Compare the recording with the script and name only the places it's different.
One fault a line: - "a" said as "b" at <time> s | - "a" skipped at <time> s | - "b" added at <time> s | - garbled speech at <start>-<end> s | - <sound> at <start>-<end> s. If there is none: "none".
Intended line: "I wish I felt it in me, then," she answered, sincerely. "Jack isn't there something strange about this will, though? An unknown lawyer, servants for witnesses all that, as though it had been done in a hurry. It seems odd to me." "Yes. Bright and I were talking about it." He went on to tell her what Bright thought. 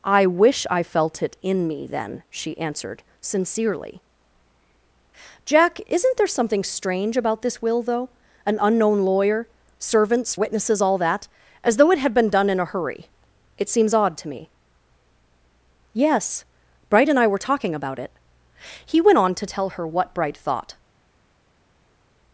- "for" skipped at 10.3 s